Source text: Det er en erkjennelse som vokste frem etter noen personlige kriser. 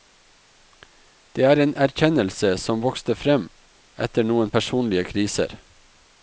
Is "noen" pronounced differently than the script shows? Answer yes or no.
no